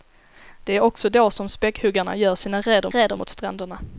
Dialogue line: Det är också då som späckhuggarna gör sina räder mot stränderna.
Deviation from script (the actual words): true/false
true